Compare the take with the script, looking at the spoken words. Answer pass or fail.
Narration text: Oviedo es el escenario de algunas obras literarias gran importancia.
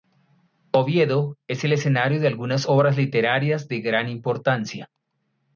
fail